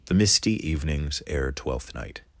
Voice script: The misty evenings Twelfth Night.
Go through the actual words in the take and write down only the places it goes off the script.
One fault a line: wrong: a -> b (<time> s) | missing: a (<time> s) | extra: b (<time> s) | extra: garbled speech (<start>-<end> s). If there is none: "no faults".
extra: ere (1.3 s)